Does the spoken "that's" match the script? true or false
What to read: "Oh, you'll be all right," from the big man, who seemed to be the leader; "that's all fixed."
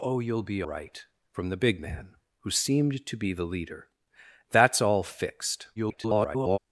true